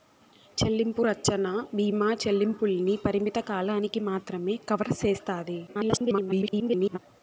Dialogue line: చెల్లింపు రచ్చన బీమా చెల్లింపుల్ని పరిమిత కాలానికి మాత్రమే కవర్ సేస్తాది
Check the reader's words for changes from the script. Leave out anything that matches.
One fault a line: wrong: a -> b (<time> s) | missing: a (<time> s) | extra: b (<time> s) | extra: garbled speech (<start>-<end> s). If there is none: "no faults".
extra: garbled speech (5.7-7.0 s)